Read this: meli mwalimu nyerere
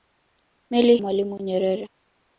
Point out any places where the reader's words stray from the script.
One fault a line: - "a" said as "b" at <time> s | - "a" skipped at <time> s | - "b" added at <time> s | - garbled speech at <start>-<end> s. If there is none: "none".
none